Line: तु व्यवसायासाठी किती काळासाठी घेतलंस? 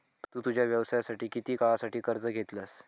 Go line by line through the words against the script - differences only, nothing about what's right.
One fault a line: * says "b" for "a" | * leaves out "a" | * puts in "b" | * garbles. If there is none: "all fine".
* puts in "तुझ्या"
* puts in "कर्ज"